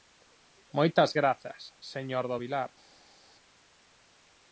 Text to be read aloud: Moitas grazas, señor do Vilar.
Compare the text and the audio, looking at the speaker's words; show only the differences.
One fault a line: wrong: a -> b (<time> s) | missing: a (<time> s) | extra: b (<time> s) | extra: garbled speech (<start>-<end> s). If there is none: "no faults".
no faults